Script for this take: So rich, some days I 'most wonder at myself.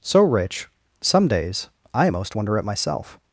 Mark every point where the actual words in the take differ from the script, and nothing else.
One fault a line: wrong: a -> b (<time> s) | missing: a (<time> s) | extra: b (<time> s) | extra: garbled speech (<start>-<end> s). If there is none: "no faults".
no faults